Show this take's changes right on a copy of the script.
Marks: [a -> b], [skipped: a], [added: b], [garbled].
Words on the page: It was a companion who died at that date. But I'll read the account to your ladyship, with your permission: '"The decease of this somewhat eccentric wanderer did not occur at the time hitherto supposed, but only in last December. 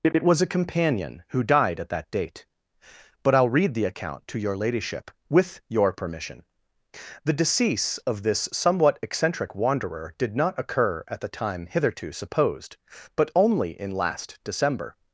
It [added: it] was a companion who died at that date. But I'll read the account to your ladyship, with your permission: '"The decease of this somewhat eccentric wanderer did not occur at the time hitherto supposed, but only in last December.